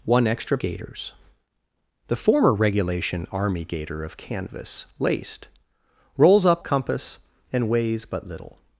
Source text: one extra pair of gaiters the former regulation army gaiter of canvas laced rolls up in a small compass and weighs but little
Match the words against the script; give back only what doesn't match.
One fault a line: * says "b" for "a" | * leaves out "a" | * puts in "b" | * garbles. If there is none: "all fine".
* leaves out "pair of"
* leaves out "in a small"